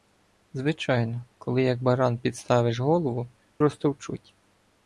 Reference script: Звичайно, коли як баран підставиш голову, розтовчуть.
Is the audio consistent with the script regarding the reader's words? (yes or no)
yes